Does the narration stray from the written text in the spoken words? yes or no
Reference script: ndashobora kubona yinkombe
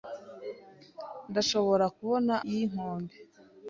no